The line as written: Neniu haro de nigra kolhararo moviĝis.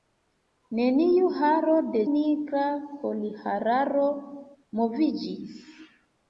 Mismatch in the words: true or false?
false